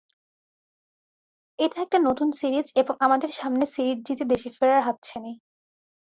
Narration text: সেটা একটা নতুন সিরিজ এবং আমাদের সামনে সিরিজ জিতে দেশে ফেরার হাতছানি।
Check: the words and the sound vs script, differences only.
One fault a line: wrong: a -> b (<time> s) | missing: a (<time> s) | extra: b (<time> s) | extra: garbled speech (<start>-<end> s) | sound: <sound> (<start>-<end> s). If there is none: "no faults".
wrong: সেটা -> এটা (1.6 s)